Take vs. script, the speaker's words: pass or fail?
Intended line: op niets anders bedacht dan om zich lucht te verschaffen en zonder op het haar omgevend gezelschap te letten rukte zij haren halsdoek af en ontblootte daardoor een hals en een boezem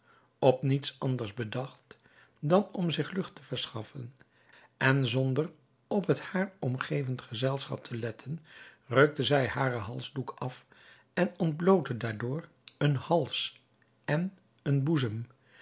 pass